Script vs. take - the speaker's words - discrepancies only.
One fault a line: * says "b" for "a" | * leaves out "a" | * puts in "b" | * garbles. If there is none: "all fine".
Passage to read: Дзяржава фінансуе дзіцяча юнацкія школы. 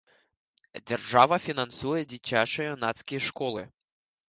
all fine